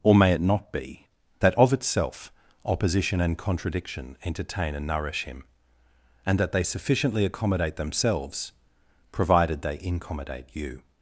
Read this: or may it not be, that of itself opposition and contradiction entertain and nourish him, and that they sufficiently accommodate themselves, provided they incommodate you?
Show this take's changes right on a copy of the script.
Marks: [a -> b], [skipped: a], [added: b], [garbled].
or may it not be, that of itself opposition and contradiction entertain and nourish him, and that they sufficiently accommodate themselves, provided they incommodate you?